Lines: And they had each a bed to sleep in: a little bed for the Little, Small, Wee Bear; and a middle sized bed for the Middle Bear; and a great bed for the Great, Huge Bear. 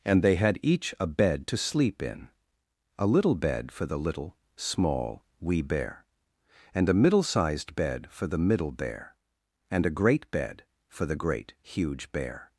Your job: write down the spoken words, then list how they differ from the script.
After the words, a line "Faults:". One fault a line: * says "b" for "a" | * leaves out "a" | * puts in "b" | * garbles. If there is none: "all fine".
And they had each a bed to sleep in: a little bed for the Little, Small, Wee Bear; and a middle sized bed for the Middle Bear; and a great bed for the Great, Huge Bear.
Faults:
all fine